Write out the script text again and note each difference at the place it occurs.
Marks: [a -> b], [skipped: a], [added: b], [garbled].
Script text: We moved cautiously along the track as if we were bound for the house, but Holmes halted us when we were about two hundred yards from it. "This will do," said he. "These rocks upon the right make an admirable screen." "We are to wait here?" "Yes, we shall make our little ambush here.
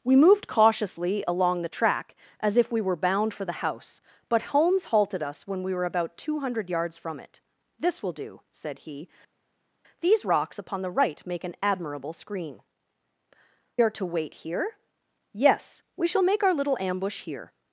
We moved cautiously along the track as if we were bound for the house, but Holmes halted us when we were about two hundred yards from it. "This will do," said he. "These rocks upon the right make an admirable screen." [skipped: "We] are to wait here?" "Yes, we shall make our little ambush here.